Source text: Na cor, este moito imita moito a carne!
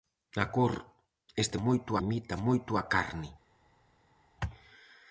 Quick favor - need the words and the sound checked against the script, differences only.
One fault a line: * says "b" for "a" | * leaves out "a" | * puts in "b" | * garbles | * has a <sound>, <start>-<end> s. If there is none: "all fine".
all fine